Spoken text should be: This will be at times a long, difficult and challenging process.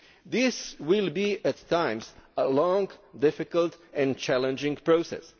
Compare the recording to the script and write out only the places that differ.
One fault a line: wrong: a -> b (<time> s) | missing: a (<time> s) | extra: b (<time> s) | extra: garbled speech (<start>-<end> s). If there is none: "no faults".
no faults